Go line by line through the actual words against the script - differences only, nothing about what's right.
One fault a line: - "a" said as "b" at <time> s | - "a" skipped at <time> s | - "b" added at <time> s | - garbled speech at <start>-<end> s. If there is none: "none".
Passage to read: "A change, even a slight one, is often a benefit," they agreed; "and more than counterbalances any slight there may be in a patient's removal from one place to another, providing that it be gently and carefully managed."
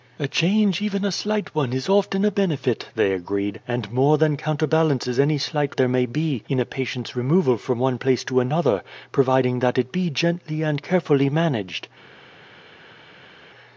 none